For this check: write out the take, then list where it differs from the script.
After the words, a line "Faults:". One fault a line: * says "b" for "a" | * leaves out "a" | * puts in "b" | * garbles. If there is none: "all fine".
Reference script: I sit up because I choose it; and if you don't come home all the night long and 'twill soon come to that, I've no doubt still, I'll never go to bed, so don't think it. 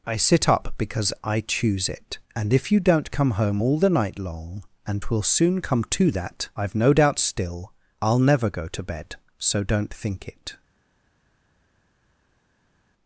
I sit up because I choose it; and if you don't come home all the night long and 'twill soon come to that, I've no doubt still, I'll never go to bed, so don't think it.
Faults:
all fine